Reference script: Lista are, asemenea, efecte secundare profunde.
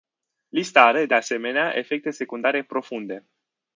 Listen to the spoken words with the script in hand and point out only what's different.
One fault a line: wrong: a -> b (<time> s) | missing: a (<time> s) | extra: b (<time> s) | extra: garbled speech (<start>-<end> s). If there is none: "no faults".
extra: de (1.0 s)